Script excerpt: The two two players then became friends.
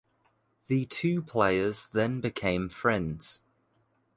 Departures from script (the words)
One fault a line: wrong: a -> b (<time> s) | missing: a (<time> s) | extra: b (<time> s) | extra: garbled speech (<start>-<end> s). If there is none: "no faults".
missing: two (1.2 s)